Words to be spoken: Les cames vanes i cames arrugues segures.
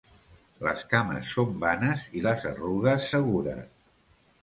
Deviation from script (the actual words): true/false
true